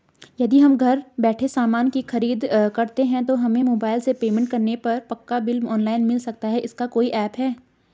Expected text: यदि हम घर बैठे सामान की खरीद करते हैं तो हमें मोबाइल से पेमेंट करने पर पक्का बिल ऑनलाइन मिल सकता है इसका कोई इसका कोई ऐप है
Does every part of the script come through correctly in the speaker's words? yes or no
no